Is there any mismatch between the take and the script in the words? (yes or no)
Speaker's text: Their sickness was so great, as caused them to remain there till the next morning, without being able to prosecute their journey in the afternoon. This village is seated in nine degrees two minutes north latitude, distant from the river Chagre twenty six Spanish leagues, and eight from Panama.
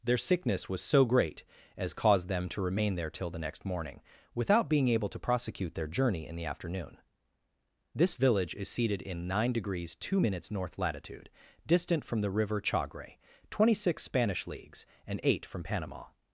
no